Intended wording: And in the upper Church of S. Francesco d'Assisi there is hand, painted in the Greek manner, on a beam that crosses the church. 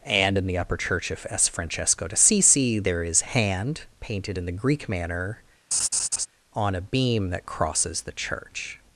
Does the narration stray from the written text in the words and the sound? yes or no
yes